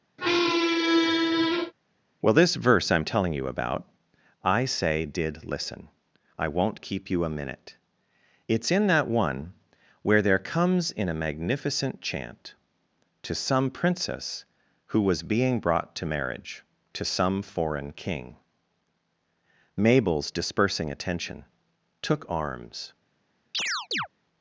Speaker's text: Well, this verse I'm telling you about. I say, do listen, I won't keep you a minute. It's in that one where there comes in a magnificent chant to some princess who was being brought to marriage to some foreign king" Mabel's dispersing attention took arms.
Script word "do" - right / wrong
wrong